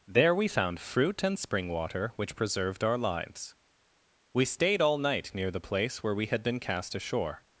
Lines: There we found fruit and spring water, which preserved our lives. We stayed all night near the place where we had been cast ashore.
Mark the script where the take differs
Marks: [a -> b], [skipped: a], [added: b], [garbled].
There we found fruit and spring water, which preserved our lives. We stayed all night near the place where we had been cast ashore.